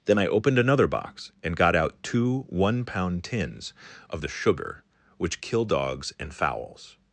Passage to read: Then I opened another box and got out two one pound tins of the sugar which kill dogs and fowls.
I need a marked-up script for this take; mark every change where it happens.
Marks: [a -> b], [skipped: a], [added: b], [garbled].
Then I opened another box and got out two one pound tins of the sugar which kill dogs and fowls.